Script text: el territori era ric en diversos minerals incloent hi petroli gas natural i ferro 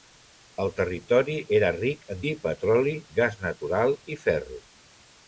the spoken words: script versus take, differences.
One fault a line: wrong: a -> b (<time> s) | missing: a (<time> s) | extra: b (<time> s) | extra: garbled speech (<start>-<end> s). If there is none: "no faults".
missing: diversos minerals incloent (2.2 s)